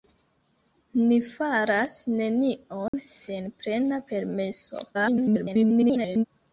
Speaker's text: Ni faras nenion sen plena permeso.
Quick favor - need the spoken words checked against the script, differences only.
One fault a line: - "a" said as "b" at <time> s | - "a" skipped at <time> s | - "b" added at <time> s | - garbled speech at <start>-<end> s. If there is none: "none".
- garbled speech at 4.9-6.2 s